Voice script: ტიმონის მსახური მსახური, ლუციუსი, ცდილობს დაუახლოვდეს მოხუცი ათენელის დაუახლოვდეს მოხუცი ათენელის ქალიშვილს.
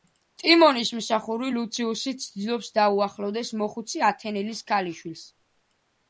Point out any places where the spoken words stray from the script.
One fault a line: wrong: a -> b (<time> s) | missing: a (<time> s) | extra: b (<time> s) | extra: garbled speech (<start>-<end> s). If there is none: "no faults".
missing: მსახური (1.5 s)
missing: დაუახლოვდეს მოხუცი ათენელის (4.6 s)